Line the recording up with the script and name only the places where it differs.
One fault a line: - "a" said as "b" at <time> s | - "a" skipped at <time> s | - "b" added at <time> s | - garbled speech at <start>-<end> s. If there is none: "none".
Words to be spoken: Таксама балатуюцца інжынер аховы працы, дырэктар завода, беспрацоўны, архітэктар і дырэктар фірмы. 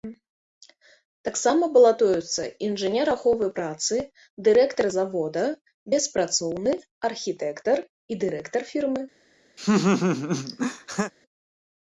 none